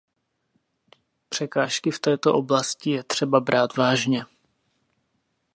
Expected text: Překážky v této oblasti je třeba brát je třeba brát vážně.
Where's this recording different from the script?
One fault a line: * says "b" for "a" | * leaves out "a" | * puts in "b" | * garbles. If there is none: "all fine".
* leaves out "je třeba brát"